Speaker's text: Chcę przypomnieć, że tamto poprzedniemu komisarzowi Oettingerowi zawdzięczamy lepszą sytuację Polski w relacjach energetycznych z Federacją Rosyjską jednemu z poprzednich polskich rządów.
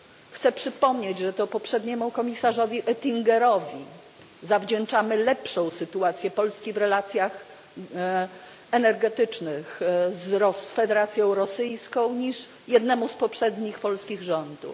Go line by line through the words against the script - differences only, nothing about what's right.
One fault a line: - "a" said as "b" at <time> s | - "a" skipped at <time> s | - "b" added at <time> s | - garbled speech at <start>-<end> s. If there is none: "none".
- "tamto" said as "to" at 1.3 s
- "niż" added at 12.2 s